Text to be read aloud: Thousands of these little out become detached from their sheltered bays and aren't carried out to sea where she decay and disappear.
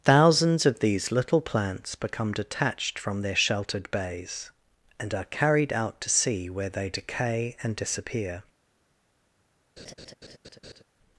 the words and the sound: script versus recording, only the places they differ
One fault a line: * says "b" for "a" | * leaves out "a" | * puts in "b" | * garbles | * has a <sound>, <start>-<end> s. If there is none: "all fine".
* says "plants" for "out"
* says "are" for "aren't"
* says "they" for "she"
* has a laugh, 9.8-10.8 s